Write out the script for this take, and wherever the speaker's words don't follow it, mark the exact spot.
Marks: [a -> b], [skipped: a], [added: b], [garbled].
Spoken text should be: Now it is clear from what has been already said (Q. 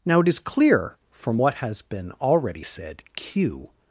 Now it is clear from what has been already said (Q.